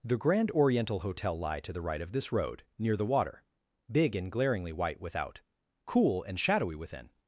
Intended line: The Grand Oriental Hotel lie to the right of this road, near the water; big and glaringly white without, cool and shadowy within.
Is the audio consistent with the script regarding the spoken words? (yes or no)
yes